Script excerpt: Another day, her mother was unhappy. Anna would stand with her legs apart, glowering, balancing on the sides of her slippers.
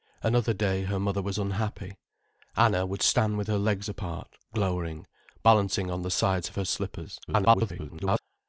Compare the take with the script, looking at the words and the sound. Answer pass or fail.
fail